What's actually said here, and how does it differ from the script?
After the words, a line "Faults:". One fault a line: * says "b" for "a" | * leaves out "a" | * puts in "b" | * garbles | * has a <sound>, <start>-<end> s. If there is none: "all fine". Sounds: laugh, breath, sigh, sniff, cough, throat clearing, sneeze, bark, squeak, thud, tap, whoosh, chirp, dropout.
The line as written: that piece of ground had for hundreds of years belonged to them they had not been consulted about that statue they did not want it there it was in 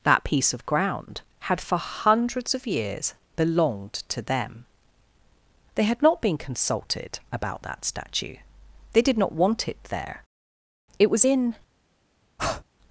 that piece of ground had for hundreds of years belonged to them they had not been consulted about that statue they did not want it there it was in
Faults:
* has a breath, 12.4-12.6 s